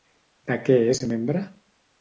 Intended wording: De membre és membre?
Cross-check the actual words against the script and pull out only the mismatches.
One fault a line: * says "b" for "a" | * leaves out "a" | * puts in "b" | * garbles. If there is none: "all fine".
* says "què" for "membre"